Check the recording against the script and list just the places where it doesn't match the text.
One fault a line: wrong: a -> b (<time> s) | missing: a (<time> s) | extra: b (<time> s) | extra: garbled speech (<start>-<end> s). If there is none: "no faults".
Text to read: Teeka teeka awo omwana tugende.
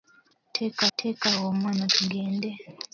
no faults